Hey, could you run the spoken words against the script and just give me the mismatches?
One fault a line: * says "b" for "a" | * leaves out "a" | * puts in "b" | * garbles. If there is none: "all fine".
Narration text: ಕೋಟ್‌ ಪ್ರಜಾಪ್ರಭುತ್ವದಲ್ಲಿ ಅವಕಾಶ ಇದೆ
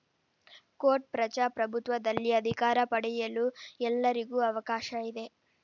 * puts in "ಅಧಿಕಾರ ಪಡೆಯಲು ಎಲ್ಲರಿಗೂ"